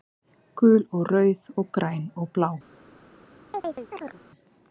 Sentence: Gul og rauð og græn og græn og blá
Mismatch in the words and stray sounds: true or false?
true